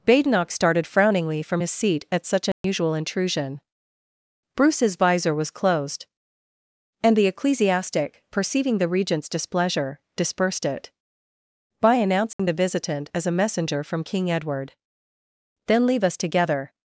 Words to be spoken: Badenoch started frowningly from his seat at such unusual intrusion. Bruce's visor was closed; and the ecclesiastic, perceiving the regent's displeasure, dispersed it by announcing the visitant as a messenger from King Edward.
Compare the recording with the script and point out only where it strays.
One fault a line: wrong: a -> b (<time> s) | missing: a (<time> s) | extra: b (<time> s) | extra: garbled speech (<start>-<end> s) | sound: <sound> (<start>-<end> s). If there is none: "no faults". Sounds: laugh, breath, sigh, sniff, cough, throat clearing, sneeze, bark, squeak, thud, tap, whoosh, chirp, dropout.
sound: dropout (2.5-2.6 s)
sound: dropout (12.3-12.4 s)
extra: Then leave us together (15.6 s)